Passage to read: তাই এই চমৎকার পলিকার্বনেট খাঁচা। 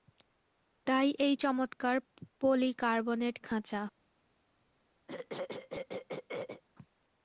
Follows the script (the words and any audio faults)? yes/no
no